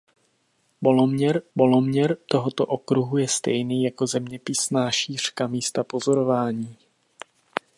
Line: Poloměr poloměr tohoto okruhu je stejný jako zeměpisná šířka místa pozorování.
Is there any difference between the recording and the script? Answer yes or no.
no